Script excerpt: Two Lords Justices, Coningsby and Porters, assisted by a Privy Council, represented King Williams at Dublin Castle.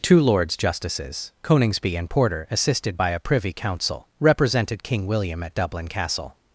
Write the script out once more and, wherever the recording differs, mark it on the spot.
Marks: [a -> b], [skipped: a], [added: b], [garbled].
Two Lords Justices, Coningsby and [Porters, -> Porter] assisted by a Privy Council, represented King [Williams -> William] at Dublin Castle.